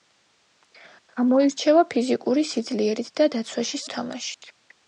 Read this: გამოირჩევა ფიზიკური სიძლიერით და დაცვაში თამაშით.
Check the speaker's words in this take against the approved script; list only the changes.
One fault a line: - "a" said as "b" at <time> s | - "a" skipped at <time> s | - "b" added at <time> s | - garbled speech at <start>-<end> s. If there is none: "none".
none